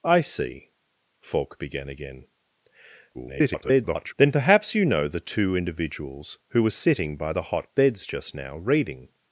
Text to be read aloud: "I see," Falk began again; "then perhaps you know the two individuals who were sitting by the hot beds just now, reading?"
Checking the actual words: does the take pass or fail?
fail